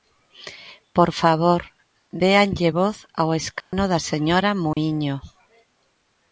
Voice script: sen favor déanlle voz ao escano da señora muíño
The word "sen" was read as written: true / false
false